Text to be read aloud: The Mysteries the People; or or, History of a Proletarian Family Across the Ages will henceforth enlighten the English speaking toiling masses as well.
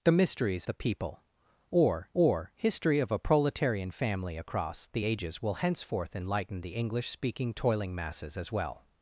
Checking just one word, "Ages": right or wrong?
right